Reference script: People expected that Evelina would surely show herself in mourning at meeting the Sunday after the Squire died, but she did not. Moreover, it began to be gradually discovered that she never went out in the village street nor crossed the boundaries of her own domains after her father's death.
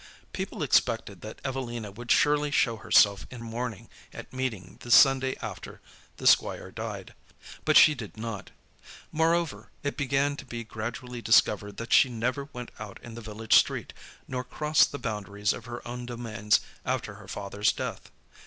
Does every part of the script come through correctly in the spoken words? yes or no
yes